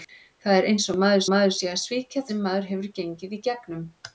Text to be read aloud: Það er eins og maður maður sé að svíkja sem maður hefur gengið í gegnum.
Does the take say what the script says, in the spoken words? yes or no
yes